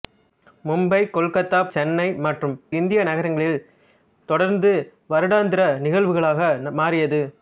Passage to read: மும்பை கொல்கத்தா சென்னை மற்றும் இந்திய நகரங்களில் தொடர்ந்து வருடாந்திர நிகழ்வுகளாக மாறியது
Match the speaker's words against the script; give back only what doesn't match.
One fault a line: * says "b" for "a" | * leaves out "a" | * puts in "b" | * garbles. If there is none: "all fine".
all fine